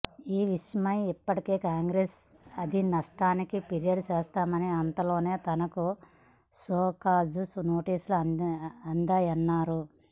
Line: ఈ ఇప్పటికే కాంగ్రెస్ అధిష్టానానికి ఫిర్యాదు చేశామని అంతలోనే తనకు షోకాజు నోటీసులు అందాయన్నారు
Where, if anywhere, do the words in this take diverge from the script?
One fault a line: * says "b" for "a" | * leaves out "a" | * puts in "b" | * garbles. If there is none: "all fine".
* puts in "విషయమై"